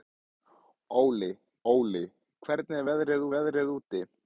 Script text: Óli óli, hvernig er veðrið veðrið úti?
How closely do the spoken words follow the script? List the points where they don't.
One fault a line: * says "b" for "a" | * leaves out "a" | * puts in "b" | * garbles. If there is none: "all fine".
all fine